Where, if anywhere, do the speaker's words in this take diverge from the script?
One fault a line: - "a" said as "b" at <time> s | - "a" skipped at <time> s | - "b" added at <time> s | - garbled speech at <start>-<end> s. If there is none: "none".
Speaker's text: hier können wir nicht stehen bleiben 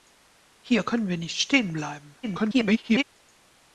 - garbled speech at 2.2-3.0 s